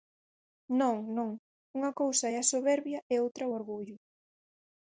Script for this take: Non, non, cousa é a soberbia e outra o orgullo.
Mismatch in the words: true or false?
true